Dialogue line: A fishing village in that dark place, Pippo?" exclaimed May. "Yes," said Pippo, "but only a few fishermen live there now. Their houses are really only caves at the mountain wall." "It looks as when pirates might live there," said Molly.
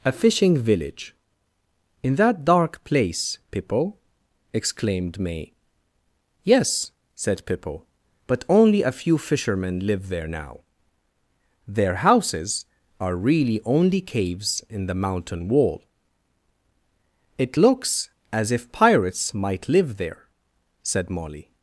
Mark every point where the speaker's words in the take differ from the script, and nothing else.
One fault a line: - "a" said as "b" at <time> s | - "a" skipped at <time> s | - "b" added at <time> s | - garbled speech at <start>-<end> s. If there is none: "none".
- "at" said as "in" at 14.7 s
- "when" said as "if" at 18.5 s